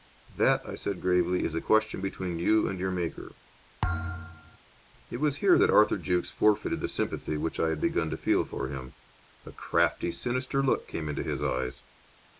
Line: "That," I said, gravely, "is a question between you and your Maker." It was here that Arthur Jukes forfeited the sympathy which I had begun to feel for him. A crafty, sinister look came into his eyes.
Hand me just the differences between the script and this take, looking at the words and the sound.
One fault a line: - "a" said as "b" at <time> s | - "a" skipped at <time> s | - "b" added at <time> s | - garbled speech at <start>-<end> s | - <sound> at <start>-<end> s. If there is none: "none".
- thud at 3.8-4.6 s